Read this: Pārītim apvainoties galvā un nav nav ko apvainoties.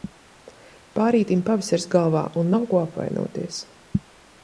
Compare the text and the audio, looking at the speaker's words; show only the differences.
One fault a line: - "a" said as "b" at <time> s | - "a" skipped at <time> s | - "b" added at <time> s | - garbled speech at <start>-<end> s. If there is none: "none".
- "apvainoties" said as "pavasaris" at 1.5 s
- "nav" skipped at 2.7 s